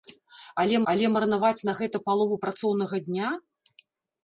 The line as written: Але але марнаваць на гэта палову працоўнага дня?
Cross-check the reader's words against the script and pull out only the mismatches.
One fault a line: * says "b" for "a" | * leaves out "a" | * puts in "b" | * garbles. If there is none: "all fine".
all fine